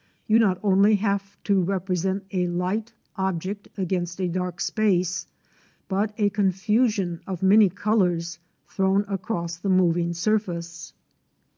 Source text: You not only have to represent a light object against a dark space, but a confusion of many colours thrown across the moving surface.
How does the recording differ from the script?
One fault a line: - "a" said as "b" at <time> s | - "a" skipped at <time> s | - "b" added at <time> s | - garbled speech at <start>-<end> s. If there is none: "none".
none